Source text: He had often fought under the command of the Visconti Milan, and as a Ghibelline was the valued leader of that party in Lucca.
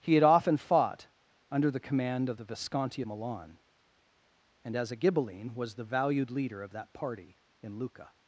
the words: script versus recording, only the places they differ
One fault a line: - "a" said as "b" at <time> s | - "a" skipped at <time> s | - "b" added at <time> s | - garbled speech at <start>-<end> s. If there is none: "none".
none